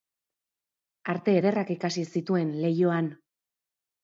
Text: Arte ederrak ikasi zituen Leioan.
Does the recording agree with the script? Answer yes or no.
yes